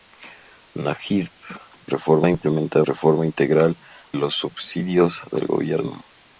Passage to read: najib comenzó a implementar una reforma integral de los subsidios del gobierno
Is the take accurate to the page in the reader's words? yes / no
no